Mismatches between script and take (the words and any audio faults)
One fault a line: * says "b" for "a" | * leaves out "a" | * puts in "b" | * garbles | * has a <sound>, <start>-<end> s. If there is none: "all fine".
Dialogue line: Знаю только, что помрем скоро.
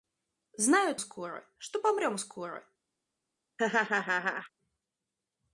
* says "скоро" for "только"
* has a laugh, 3.6-4.5 s